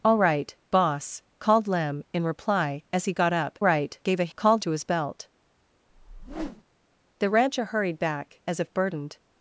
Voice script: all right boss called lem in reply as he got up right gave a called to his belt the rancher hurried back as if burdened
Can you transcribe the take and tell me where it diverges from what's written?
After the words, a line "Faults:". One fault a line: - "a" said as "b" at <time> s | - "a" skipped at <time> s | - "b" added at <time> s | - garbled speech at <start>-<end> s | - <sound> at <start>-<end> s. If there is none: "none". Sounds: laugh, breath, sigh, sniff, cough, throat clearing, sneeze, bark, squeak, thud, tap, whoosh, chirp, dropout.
all right boss called lem in reply as he got up right gave a called to his belt the rancher hurried back as if burdened
Faults:
- whoosh at 5.9-6.6 s